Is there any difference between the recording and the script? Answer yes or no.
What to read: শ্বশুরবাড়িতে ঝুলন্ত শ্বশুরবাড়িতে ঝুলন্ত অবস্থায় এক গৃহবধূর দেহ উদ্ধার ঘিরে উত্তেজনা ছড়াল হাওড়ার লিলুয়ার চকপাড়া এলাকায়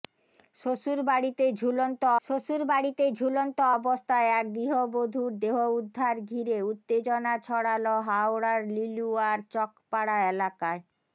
no